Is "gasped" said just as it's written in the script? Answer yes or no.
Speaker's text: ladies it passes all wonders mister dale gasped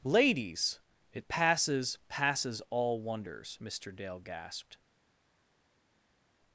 yes